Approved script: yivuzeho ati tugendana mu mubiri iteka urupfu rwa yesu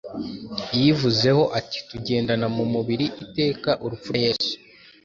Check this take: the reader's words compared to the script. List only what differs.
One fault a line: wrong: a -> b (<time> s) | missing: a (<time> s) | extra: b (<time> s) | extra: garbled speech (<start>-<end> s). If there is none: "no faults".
missing: rwa (4.1 s)